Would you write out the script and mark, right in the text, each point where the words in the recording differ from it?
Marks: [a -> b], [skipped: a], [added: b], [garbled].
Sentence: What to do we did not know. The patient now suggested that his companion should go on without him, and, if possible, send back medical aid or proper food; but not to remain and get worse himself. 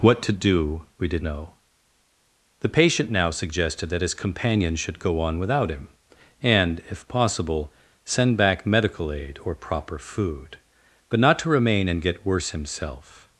What to do we did [skipped: not] know. The patient now suggested that his companion should go on without him, and, if possible, send back medical aid or proper food; but not to remain and get worse himself.